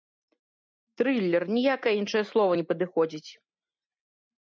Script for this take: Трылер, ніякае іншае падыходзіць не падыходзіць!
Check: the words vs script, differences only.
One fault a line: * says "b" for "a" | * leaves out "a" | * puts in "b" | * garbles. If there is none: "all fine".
* says "слова" for "падыходзіць"